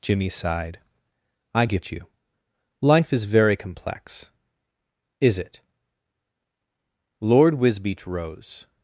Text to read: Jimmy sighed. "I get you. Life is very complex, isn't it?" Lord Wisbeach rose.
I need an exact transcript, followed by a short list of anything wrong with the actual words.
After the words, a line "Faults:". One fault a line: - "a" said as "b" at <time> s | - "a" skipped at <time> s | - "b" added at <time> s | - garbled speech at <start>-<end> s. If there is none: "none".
Jimmy sighed. "I get you. Life is very complex, is it?" Lord Wisbeach rose.
Faults:
- "isn't" said as "is" at 5.2 s